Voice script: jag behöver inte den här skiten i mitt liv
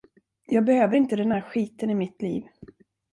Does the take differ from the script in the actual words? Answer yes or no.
no